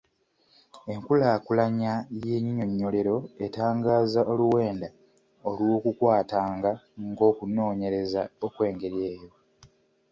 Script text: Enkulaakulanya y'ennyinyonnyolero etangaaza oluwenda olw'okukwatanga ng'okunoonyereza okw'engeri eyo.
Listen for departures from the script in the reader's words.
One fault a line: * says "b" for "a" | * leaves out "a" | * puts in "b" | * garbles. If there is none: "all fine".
all fine